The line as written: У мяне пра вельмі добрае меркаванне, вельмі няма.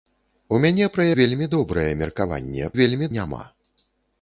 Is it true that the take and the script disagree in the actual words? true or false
false